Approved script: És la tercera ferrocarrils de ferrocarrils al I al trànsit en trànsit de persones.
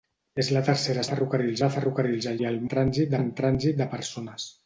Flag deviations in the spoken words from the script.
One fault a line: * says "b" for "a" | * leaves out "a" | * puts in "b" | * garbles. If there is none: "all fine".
all fine